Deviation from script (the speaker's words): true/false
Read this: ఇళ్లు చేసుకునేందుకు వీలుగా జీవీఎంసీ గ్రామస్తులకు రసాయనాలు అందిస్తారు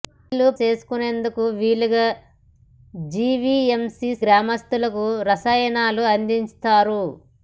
false